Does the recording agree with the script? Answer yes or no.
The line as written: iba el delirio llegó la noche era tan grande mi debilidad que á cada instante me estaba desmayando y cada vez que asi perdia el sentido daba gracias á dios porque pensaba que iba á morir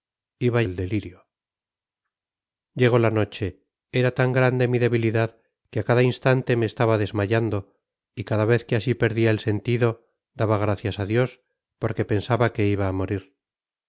yes